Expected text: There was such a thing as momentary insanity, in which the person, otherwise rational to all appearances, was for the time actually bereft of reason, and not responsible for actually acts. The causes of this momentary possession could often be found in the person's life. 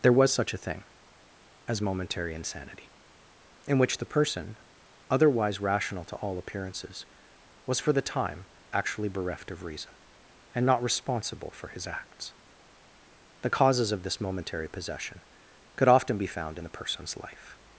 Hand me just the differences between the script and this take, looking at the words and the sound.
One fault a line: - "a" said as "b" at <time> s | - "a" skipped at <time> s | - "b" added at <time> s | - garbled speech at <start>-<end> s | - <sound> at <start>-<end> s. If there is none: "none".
- "actually" said as "his" at 11.7 s